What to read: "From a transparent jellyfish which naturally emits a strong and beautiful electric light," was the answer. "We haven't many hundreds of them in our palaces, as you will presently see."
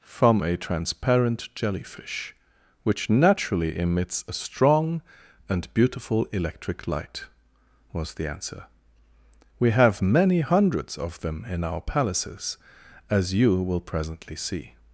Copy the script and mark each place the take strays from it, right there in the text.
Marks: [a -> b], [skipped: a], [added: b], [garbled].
"From a transparent jellyfish which naturally emits a strong and beautiful electric light," was the answer. "We [haven't -> have] many hundreds of them in our palaces, as you will presently see."